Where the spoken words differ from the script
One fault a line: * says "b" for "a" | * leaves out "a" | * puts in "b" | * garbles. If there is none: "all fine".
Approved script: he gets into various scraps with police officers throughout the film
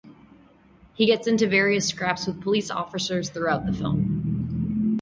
all fine